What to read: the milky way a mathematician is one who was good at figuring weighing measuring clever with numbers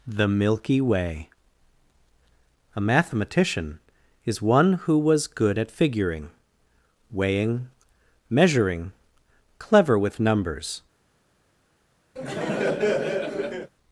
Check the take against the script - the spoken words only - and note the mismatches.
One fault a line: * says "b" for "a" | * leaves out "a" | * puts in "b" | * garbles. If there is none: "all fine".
all fine